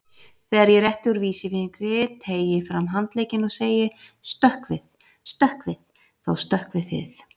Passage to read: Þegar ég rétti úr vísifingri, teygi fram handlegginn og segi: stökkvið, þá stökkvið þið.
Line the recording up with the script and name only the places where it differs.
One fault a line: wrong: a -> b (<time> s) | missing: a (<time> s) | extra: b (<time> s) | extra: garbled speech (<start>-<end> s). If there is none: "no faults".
extra: stökkvið (5.3 s)